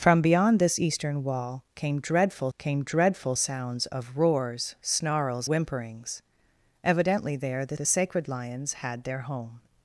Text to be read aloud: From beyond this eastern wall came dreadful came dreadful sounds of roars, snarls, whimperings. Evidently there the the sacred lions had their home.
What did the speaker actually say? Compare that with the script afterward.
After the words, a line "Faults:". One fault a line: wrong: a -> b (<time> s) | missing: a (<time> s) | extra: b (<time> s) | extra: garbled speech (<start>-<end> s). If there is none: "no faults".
From beyond this eastern wall came dreadful came dreadful sounds of roars, snarls, whimperings. Evidently there the the sacred lions had their home.
Faults:
no faults